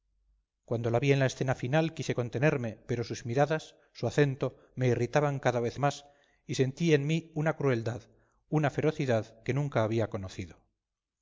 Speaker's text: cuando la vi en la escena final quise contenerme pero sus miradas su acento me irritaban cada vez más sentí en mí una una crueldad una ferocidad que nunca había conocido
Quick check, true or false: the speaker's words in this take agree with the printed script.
false